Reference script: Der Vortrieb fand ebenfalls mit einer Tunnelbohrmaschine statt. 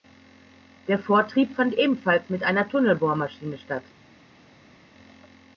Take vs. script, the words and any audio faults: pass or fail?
pass